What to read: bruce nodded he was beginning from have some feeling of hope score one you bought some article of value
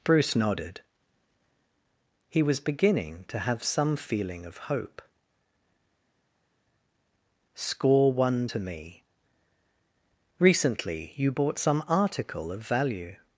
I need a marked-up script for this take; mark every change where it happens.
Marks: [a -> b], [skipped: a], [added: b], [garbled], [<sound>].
bruce nodded he was beginning [from -> to] have some feeling of hope score one [added: to me recently] you bought some article of value